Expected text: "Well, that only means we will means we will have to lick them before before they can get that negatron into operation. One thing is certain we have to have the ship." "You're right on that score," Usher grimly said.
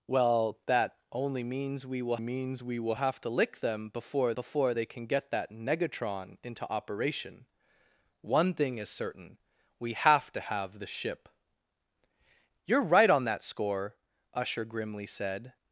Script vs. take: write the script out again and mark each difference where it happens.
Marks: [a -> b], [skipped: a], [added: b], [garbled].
"Well, that only means we will means we will have to lick them before before they can get that negatron into operation. One thing is certain we have to have the ship." "You're right on that score," Usher grimly said.